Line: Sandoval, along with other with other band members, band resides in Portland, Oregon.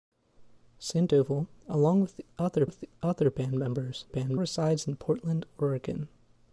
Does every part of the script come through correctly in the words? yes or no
yes